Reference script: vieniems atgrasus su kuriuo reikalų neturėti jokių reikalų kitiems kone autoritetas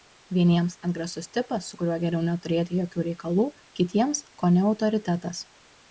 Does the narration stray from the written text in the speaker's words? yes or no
yes